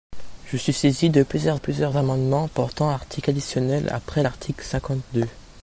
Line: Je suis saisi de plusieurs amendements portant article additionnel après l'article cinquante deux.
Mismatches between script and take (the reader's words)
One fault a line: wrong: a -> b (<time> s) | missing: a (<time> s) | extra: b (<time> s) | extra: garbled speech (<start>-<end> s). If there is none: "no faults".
extra: plusieurs (1.5 s)